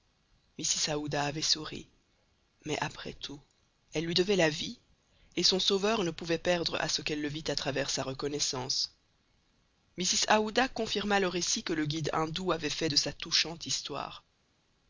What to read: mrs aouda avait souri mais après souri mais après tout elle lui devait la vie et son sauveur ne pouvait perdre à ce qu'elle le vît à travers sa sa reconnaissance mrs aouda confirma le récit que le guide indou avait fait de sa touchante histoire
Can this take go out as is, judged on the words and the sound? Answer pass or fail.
fail